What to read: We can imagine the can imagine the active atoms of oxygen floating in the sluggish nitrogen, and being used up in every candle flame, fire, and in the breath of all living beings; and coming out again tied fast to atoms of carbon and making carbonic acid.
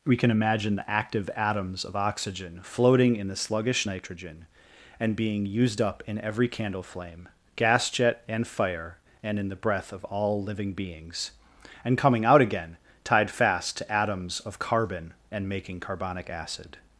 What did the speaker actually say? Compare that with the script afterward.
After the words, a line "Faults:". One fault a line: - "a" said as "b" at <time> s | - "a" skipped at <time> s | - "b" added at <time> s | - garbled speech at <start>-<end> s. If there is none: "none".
We can imagine the active atoms of oxygen floating in the sluggish nitrogen, and being used up in every candle flame, gas jet and fire, and in the breath of all living beings; and coming out again tied fast to atoms of carbon and making carbonic acid.
Faults:
- "can imagine the" skipped at 0.9 s
- "gas jet and" added at 7.6 s